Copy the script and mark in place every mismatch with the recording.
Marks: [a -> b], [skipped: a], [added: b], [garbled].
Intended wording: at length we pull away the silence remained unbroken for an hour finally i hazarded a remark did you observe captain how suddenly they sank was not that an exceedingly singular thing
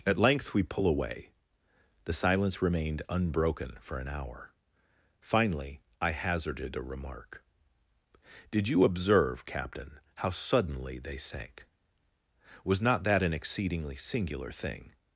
at length we pull away the silence remained unbroken for an hour finally i hazarded a remark did you observe captain how suddenly they sank was not that an exceedingly singular thing